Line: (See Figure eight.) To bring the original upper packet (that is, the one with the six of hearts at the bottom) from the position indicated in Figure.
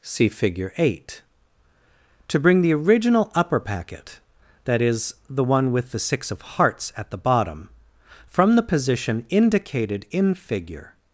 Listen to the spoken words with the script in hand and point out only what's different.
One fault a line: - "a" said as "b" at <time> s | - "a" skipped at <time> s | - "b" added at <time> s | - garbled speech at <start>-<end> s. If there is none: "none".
none